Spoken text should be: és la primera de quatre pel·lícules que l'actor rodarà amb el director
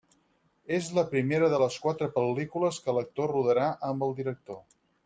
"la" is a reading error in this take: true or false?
false